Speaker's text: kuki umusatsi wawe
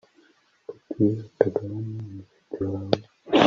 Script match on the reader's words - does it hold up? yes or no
no